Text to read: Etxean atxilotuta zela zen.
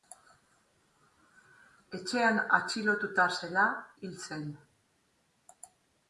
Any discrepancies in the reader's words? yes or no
yes